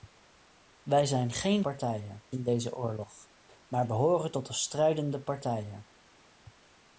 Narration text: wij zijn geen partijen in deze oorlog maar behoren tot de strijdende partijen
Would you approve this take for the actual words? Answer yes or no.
yes